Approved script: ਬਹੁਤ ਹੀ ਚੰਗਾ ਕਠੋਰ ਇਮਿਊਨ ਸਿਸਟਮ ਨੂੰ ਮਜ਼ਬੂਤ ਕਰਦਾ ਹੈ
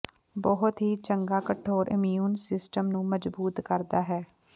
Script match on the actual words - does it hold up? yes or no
yes